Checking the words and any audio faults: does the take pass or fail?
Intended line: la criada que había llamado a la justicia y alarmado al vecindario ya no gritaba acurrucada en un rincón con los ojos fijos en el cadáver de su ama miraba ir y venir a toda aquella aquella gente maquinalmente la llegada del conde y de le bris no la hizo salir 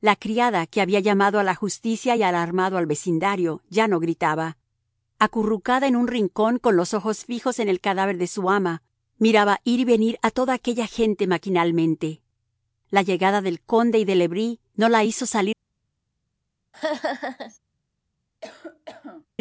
fail